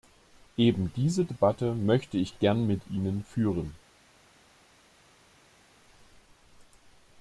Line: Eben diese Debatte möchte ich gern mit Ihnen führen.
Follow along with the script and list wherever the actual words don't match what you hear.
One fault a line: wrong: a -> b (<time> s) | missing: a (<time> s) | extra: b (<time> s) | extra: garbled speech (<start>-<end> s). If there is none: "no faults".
no faults